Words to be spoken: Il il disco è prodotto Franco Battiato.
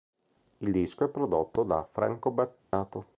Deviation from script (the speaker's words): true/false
true